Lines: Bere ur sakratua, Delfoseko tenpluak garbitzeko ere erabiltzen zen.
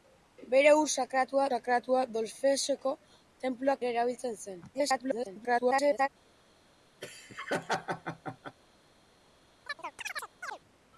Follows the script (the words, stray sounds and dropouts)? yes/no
no